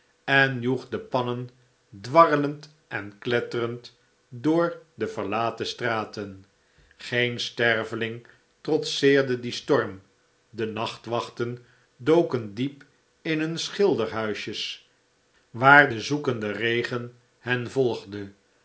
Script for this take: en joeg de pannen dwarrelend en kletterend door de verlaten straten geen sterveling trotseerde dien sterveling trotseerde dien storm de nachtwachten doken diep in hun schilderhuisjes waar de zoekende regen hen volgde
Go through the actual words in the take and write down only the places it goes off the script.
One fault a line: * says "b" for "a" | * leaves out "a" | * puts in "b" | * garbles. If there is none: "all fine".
* leaves out "sterveling trotseerde dien"